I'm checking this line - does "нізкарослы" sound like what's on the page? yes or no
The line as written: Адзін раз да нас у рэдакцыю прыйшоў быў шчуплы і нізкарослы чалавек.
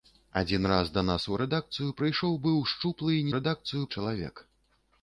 no